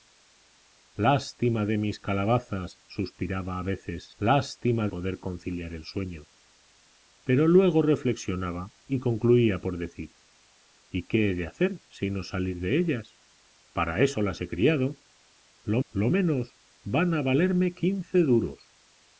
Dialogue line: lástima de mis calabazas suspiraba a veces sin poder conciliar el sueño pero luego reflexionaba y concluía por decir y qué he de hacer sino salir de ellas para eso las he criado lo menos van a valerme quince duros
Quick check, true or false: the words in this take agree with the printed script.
false